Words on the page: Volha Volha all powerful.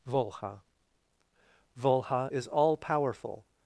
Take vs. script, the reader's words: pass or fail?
fail